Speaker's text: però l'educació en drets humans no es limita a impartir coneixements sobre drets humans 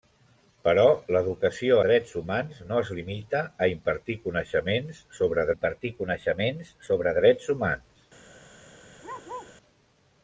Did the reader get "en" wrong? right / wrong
wrong